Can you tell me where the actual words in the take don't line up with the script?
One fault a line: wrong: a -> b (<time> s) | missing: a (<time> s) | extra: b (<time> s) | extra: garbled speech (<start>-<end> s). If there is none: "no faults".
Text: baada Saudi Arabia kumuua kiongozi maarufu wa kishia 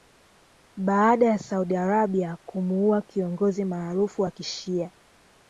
extra: ya (1.2 s)